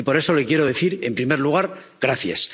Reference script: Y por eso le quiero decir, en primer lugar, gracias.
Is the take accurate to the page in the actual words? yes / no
yes